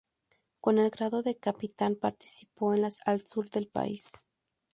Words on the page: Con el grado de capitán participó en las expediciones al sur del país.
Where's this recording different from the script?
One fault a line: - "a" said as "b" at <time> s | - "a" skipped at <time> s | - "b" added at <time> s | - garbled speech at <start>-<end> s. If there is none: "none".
- "expediciones" skipped at 3.0 s